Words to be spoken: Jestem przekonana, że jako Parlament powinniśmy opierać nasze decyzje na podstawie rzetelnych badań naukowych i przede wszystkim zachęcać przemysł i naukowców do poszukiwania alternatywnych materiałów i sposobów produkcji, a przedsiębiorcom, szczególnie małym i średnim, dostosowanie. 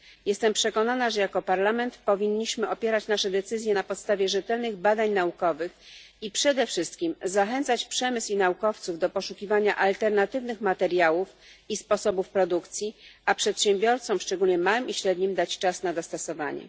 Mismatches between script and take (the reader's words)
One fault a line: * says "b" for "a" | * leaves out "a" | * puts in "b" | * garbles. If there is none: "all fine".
* puts in "dać czas na"